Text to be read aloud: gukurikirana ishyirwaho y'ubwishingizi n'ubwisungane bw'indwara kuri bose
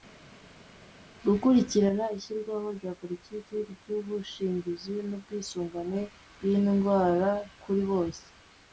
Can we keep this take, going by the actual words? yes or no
no